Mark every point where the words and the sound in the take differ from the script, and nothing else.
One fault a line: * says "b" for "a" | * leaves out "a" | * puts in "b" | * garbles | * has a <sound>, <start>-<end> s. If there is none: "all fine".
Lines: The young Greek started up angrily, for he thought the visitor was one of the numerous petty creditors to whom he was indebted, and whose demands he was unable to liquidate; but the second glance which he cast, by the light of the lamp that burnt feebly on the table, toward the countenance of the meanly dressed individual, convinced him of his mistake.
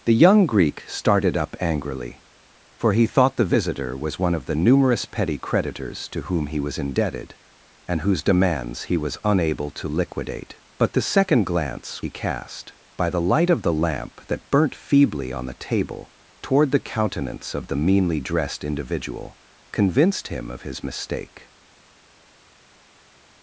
* leaves out "which"